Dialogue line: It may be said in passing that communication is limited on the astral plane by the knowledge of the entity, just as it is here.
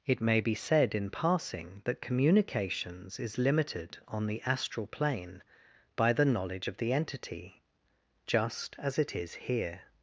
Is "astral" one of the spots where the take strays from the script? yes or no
no